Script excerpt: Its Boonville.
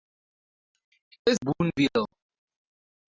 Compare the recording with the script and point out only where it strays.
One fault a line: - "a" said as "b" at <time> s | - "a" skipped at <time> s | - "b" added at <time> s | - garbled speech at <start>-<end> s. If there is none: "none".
none